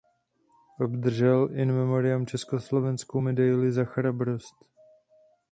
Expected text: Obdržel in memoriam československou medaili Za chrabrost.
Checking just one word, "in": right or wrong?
right